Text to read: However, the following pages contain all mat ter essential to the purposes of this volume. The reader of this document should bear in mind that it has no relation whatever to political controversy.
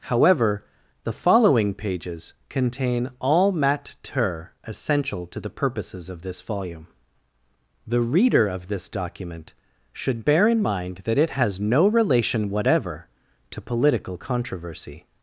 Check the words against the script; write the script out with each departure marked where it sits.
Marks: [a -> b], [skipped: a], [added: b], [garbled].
However, the following pages contain all mat ter essential to the purposes of this volume. The reader of this document should bear in mind that it has no relation whatever to political controversy.